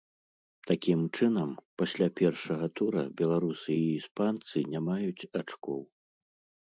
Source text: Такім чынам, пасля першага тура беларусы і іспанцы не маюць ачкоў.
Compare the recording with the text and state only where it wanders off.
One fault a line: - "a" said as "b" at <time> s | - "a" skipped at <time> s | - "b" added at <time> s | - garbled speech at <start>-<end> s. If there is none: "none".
none